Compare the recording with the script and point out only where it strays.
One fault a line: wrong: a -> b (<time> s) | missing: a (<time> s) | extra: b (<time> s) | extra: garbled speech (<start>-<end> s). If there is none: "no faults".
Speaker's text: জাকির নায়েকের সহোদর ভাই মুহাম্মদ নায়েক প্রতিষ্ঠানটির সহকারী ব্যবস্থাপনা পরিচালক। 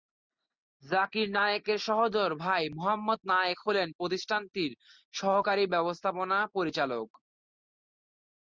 extra: হলেন (3.7 s)